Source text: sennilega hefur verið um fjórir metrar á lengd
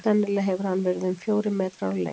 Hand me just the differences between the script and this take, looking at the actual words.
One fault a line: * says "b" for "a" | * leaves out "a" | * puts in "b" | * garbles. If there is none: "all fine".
* puts in "hann"